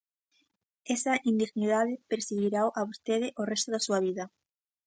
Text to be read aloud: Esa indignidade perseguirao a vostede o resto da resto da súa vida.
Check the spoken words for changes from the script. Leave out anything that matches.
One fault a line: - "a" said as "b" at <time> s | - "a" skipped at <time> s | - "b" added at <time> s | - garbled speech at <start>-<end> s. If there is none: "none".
- "resto da" skipped at 3.8 s